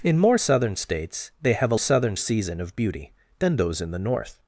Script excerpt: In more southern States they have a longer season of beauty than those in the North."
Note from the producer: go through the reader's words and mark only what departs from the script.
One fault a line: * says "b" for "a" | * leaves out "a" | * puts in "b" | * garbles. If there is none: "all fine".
* says "southern" for "longer"